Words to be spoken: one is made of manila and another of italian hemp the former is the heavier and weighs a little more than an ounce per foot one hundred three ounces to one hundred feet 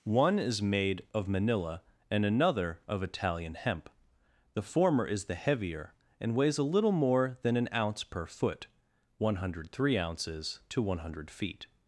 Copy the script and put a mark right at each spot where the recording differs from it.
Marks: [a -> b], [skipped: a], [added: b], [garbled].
one is made of manila and another of italian hemp the former is the heavier and weighs a little more than an ounce per foot one hundred three ounces to one hundred feet